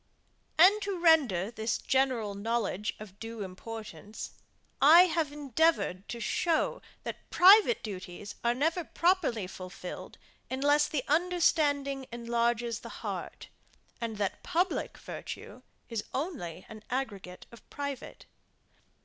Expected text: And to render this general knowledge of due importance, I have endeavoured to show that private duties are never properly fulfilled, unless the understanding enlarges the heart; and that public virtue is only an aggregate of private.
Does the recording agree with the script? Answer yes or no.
yes